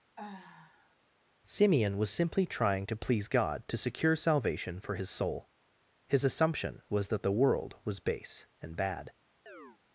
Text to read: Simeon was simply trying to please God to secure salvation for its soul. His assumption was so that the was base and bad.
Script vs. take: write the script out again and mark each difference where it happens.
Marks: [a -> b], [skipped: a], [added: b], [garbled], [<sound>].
[sigh] Simeon was simply trying to please God to secure salvation for [its -> his] soul. His assumption was [skipped: so] that the [added: world] was base and bad. [chirp]